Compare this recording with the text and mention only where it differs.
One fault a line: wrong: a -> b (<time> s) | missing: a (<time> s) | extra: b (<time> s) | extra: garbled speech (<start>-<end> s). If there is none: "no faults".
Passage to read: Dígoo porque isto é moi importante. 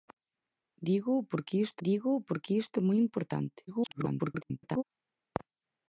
extra: dígoo porque isto (1.9 s)
extra: garbled speech (3.7-4.8 s)